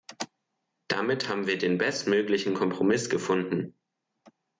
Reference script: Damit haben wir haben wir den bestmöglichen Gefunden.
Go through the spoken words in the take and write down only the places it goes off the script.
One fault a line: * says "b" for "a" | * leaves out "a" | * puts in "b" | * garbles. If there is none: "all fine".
* leaves out "haben wir"
* puts in "Kompromiss"